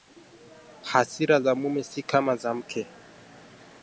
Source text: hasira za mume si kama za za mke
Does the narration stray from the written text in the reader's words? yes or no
yes